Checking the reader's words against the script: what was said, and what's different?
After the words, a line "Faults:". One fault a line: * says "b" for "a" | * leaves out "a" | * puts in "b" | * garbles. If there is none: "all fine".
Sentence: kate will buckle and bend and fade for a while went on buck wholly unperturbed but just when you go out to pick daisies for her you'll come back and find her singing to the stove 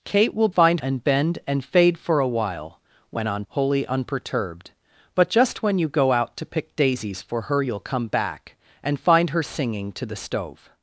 kate will find and bend and fade for a while went on wholly unperturbed but just when you go out to pick daisies for her you'll come back and find her singing to the stove
Faults:
* says "find" for "buckle"
* leaves out "buck"